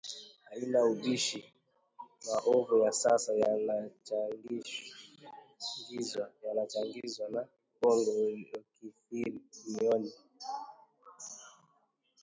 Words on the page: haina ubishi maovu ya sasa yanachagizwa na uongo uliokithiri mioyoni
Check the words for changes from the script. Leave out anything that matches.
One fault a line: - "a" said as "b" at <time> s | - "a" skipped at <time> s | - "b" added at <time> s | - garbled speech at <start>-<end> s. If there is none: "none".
none